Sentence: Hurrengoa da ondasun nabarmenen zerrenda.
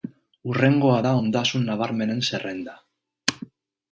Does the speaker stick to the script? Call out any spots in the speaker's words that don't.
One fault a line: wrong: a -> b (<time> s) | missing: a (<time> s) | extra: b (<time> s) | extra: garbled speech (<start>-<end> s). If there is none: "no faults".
no faults